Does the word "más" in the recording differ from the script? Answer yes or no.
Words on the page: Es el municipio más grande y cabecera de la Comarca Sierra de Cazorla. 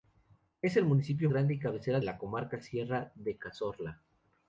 yes